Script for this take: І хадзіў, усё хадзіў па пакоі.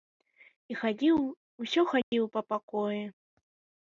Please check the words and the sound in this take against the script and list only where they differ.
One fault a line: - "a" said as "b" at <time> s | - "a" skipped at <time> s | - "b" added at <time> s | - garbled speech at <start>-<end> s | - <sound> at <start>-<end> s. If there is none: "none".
- dropout at 2.0-2.1 s